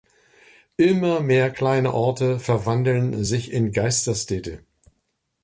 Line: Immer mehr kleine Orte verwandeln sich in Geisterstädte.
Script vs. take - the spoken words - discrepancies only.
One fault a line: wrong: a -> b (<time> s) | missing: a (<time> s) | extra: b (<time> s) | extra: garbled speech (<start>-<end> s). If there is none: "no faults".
no faults